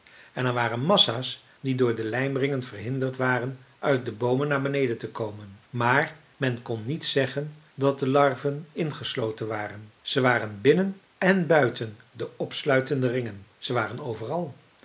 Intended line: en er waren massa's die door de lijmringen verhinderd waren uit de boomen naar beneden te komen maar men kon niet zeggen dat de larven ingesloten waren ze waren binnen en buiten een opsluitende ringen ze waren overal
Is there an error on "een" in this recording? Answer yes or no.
yes